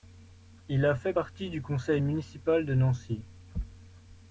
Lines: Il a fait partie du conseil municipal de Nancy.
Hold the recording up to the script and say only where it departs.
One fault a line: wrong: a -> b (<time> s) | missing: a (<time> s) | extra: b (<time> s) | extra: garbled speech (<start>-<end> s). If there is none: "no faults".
no faults